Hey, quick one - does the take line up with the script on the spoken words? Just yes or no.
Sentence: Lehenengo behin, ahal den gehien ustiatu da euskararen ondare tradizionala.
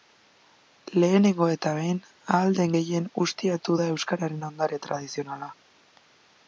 no